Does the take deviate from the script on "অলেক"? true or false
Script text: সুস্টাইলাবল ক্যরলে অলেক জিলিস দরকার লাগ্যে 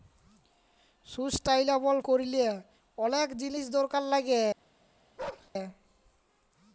false